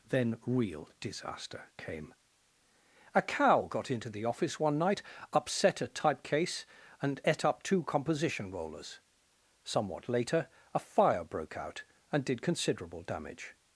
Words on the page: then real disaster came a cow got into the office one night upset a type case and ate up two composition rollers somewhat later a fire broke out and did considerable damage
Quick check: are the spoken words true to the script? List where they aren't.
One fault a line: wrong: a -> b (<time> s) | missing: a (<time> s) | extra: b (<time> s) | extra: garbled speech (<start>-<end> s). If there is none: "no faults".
no faults